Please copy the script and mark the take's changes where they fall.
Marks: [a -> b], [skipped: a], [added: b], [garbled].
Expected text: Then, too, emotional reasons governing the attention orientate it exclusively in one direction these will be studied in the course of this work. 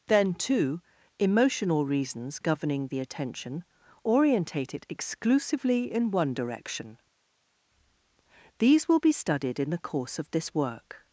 Then, too, emotional reasons governing the attention orientate it exclusively in one direction these will be studied in the course of this work.